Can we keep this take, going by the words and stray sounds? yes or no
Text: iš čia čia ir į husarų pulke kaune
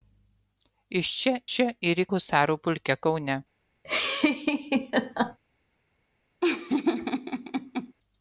no